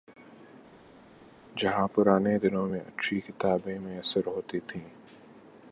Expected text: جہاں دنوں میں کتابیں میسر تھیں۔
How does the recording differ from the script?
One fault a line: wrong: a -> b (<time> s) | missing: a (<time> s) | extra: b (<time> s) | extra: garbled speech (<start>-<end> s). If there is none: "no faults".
extra: پرانے (1.9 s)
extra: اچھی (2.8 s)
extra: ہوتی (4.3 s)